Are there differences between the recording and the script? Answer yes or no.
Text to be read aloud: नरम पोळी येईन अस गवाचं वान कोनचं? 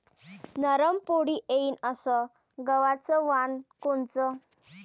no